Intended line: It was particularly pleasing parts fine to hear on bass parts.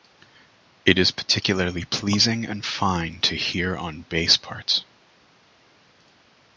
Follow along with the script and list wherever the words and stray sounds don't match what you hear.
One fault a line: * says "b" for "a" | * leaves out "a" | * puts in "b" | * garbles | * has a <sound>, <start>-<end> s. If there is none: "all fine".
* says "is" for "was"
* says "and" for "parts"